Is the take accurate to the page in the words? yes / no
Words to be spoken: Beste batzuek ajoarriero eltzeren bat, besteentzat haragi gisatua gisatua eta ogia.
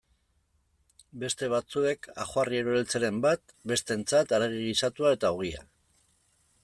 no